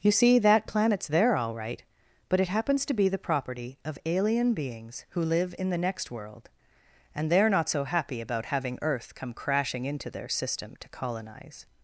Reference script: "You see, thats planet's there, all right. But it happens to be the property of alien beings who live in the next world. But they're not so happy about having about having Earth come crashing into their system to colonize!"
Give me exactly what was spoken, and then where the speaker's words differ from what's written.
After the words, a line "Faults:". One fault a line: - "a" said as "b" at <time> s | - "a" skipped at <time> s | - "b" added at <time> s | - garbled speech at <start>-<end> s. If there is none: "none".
"You see, that planet's there, all right. But it happens to be the property of alien beings who live in the next world. And they're not so happy about having Earth come crashing into their system to colonize!"
Faults:
- "thats" said as "that" at 0.4 s
- "But" said as "And" at 7.1 s
- "about having" skipped at 8.8 s